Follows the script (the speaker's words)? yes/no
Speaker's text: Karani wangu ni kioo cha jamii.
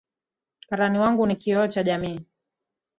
yes